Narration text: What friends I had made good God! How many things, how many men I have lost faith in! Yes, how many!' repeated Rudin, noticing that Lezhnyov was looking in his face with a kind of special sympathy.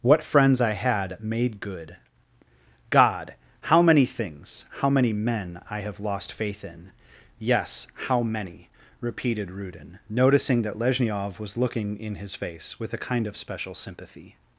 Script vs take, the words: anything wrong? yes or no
no